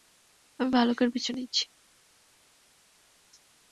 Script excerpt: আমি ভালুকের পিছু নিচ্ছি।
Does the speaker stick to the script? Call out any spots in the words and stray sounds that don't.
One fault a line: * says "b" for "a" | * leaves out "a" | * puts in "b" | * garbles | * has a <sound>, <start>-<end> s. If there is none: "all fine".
all fine